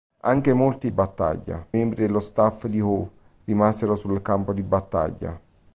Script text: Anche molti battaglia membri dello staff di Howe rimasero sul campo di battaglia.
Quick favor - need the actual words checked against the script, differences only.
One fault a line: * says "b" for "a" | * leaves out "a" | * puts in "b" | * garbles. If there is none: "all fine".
all fine